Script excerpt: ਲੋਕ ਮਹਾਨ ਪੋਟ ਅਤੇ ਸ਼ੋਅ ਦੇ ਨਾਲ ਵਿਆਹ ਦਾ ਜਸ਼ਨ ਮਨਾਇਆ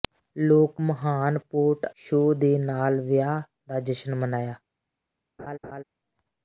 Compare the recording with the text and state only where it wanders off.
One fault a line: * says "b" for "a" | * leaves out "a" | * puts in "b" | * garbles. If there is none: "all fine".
* leaves out "ਅਤੇ"